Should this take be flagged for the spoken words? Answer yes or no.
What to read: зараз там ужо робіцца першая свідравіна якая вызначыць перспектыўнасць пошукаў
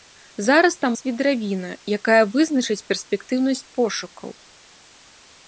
yes